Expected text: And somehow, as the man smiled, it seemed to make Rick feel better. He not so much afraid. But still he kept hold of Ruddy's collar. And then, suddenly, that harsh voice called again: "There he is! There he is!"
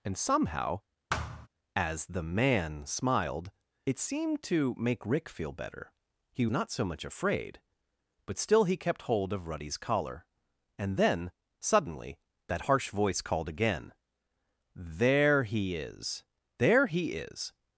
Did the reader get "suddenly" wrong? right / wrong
right